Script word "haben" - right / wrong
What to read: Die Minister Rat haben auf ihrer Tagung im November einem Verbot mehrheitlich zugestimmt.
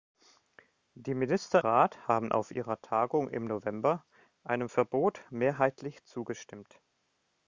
right